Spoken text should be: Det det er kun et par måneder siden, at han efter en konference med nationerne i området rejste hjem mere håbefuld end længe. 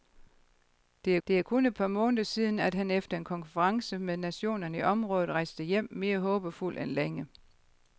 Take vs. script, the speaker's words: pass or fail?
pass